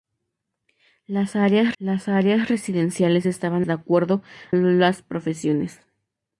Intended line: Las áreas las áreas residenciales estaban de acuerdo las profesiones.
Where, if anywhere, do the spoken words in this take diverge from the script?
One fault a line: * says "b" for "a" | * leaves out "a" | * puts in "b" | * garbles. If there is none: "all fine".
all fine